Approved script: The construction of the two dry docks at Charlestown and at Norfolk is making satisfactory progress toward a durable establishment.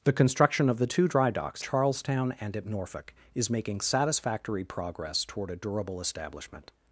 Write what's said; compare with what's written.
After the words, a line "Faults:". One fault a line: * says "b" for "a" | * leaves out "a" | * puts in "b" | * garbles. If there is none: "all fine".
The construction of the two dry docks Charlestown and at Norfolk is making satisfactory progress toward a durable establishment.
Faults:
* leaves out "at"